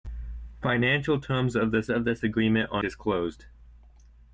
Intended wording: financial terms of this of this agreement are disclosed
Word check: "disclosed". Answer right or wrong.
right